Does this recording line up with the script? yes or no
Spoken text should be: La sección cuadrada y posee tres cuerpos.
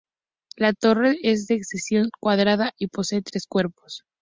no